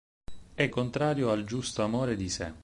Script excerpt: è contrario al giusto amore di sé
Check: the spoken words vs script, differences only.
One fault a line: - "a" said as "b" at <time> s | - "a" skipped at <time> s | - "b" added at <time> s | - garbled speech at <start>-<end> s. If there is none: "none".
none